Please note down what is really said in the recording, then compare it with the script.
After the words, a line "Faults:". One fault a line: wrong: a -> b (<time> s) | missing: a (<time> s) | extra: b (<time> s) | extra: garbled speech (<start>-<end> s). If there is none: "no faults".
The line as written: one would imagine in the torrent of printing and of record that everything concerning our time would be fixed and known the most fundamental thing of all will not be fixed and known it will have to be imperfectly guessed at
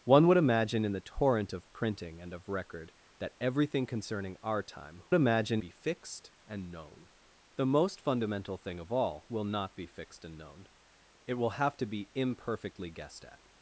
one would imagine in the torrent of printing and of record that everything concerning our time imagine be fixed and known the most fundamental thing of all will not be fixed and known it will have to be imperfectly guessed at
Faults:
wrong: would -> imagine (5.1 s)